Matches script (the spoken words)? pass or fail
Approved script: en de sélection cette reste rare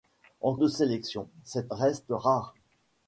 pass